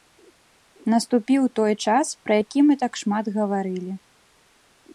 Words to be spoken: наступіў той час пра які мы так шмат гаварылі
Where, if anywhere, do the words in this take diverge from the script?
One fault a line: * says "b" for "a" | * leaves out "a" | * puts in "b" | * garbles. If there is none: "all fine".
all fine